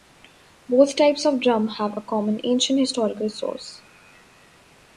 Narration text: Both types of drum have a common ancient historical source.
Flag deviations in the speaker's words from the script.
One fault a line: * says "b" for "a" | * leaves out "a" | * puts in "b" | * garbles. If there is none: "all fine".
all fine